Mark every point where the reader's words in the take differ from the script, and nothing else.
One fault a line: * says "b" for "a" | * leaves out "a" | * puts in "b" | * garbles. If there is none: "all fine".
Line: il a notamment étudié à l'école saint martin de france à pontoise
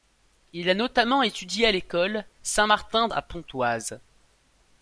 * leaves out "de france"